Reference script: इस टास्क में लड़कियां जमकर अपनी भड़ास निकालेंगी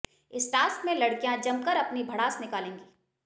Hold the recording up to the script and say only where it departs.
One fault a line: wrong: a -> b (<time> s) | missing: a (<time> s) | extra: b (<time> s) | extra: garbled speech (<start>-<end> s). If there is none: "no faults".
no faults